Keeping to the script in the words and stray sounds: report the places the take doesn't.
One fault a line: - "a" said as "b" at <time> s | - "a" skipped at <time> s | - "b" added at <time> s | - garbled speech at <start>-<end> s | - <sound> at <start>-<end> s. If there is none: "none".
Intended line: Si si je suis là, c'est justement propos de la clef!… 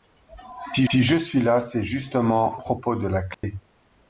- dropout at 3.3-3.4 s